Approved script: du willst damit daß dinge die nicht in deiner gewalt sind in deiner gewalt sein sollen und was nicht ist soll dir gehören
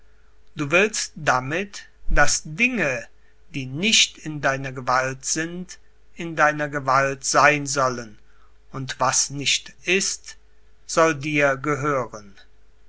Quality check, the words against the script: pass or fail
pass